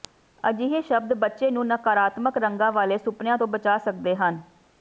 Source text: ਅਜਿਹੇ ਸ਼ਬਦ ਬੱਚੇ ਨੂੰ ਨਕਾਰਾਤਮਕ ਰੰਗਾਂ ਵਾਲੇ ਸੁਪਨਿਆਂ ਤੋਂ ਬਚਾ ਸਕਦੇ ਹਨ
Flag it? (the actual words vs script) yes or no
no